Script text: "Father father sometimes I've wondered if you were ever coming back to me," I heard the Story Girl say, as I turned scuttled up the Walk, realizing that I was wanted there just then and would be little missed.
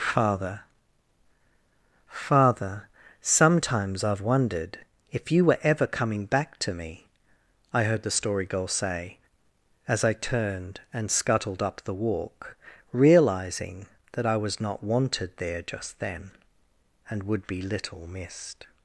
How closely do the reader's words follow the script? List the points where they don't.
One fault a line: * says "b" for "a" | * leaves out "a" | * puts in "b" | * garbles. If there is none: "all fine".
* puts in "and"
* puts in "not"